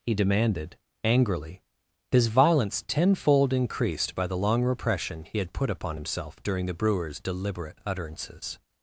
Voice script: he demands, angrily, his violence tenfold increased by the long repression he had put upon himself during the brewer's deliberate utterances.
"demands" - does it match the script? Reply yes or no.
no